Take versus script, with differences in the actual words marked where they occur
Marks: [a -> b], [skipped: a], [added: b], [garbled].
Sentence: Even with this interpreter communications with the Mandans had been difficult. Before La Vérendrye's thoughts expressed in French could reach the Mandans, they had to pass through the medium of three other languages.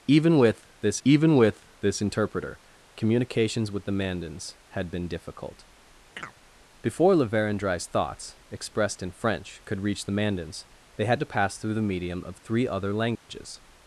Even with this [added: even with this] interpreter communications with the Mandans had been difficult. Before La Vérendrye's thoughts expressed in French could reach the Mandans, they had to pass through the medium of three other languages.